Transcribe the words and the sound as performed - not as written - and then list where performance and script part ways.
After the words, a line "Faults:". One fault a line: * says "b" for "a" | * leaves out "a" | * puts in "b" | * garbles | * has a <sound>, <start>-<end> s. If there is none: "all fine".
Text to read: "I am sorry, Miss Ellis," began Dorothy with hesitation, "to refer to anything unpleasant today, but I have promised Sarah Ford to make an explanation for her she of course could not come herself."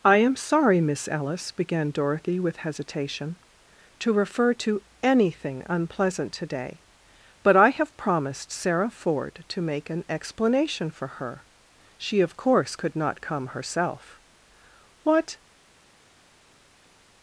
"I am sorry, Miss Ellis," began Dorothy with hesitation, "to refer to anything unpleasant today, but I have promised Sarah Ford to make an explanation for her she of course could not come herself." "What
Faults:
* puts in "What"